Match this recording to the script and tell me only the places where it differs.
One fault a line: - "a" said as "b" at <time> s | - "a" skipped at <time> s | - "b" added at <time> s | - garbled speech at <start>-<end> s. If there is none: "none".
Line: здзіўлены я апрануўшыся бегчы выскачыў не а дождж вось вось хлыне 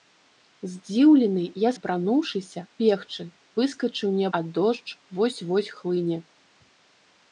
none